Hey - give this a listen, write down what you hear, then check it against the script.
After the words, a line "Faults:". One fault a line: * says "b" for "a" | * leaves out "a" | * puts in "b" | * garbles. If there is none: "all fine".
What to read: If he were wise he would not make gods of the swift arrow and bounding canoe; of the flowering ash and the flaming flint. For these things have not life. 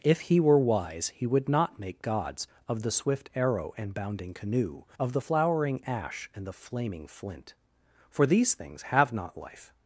If he were wise he would not make gods of the swift arrow and bounding canoe; of the flowering ash and the flaming flint. For these things have not life.
Faults:
all fine